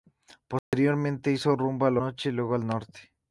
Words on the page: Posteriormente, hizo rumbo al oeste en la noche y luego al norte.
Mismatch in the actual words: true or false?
true